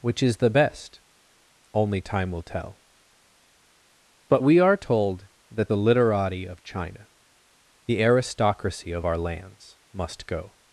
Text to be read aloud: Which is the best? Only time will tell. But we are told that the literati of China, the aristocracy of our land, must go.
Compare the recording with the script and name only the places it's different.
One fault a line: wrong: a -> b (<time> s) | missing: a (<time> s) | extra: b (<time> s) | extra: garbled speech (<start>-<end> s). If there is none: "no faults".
wrong: land -> lands (9.2 s)